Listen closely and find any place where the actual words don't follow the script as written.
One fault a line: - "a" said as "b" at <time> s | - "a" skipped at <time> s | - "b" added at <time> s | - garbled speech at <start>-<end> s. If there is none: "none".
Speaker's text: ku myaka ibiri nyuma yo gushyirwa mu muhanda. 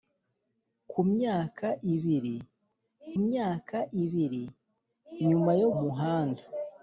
- "myaka ibiri" added at 3.2 s
- "gushyirwa mu" skipped at 5.7 s